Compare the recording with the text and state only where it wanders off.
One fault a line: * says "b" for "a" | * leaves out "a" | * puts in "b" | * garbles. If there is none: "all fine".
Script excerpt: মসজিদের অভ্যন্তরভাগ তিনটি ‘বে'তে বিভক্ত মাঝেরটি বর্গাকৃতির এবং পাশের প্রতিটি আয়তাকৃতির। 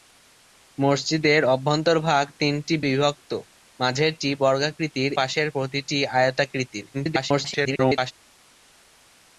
* leaves out "বে'তে"
* leaves out "এবং"
* garbles